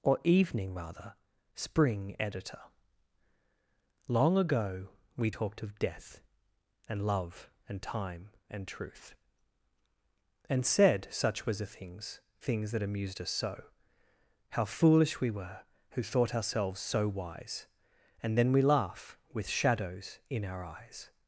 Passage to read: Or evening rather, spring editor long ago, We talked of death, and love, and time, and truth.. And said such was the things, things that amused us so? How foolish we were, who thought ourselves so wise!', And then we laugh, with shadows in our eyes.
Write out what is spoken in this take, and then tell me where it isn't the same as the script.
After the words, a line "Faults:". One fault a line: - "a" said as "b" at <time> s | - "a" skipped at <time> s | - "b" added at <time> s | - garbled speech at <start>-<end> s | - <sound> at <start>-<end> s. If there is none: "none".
Or evening rather, spring editor long ago, We talked of death, and love, and time, and truth.. And said such was the things, things that amused us so? How foolish we were, who thought ourselves so wise!', And then we laugh, with shadows in our eyes.
Faults:
none